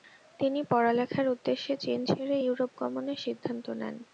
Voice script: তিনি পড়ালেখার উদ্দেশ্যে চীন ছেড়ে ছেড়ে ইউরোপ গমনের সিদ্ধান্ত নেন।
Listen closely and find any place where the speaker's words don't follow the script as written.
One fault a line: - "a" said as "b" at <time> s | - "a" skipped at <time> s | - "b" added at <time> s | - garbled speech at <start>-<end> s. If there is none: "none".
- "ছেড়ে" skipped at 2.4 s